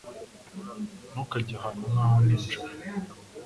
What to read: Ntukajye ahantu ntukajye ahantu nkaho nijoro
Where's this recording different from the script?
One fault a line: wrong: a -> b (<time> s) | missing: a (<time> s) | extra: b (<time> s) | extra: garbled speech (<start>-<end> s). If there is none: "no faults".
missing: ntukajye ahantu (1.8 s)